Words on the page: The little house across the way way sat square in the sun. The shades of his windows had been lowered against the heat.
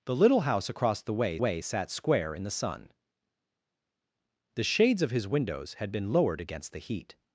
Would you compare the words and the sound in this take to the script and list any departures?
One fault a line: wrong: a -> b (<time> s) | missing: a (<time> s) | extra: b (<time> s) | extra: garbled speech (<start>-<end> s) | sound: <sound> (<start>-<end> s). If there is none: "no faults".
no faults